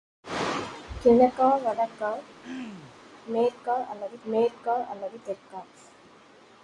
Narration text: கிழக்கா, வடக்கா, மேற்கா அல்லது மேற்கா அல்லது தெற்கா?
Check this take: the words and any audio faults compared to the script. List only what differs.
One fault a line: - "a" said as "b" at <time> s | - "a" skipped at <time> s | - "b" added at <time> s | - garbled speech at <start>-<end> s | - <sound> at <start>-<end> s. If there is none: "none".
- throat clearing at 2.4-3.0 s